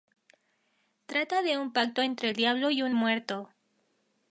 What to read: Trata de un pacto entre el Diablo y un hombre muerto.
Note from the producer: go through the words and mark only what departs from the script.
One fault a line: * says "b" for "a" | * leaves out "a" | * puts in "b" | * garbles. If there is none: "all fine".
* leaves out "hombre"